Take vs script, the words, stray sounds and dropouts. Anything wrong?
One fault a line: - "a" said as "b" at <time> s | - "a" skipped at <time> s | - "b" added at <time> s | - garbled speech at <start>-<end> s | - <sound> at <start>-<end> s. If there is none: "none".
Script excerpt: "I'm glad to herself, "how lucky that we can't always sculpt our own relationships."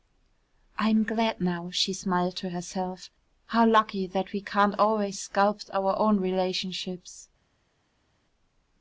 - "now she smiled" added at 1.4 s